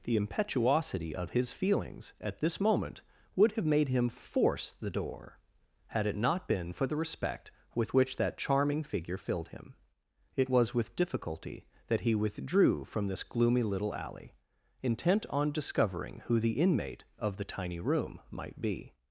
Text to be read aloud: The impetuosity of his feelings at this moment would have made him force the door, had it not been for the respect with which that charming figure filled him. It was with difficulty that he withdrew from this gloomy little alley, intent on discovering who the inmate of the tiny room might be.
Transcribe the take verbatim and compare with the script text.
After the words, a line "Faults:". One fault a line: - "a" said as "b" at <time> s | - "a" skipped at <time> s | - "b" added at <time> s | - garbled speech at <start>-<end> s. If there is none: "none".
The impetuosity of his feelings at this moment would have made him force the door, had it not been for the respect with which that charming figure filled him. It was with difficulty that he withdrew from this gloomy little alley, intent on discovering who the inmate of the tiny room might be.
Faults:
none